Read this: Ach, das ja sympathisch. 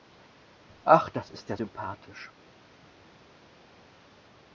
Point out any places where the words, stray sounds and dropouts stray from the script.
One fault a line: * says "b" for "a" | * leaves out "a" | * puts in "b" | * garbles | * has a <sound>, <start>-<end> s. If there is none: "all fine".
* puts in "ist"